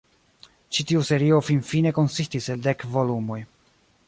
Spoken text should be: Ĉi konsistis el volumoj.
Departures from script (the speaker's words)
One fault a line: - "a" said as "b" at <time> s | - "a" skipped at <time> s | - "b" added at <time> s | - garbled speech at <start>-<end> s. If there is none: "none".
- "tiu serio finfine" added at 0.9 s
- "dek" added at 2.7 s